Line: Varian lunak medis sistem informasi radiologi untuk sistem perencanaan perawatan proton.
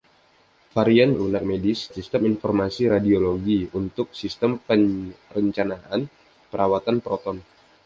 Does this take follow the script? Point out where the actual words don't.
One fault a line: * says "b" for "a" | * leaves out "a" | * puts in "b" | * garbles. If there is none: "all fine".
all fine